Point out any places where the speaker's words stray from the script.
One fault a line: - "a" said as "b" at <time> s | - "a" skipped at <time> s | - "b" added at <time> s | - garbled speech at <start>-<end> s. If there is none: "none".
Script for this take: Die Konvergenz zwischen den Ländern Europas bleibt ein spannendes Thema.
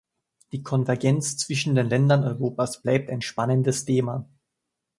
none